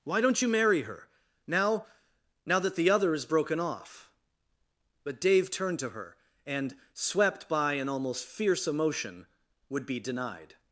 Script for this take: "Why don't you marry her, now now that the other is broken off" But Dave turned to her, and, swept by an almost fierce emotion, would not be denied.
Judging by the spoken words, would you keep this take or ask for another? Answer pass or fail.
fail